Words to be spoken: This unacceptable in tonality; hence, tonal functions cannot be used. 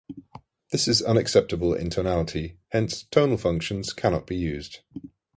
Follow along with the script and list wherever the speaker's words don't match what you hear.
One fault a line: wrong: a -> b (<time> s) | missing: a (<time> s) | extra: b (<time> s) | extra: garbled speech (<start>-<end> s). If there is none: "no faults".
extra: is (0.9 s)